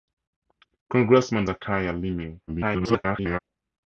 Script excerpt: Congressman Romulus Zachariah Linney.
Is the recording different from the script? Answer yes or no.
yes